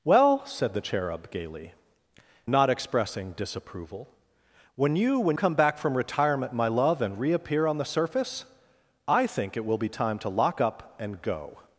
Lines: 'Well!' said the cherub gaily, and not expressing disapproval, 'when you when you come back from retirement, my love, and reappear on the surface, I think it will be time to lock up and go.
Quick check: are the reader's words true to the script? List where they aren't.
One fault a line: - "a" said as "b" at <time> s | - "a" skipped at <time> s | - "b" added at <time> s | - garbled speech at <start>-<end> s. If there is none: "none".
- "and" skipped at 1.7 s
- "you" skipped at 5.4 s